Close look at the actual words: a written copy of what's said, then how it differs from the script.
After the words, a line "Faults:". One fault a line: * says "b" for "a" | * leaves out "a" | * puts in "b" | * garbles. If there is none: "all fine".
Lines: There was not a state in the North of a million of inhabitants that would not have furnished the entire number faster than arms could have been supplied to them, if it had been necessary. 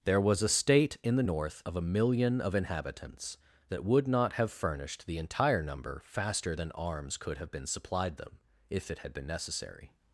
There was a state in the North of a million of inhabitants that would not have furnished the entire number faster than arms could have been supplied them, if it had been necessary.
Faults:
* leaves out "not"
* leaves out "to"